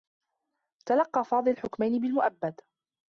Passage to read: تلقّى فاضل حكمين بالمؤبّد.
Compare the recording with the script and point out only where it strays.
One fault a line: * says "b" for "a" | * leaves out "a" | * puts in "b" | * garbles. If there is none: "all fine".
all fine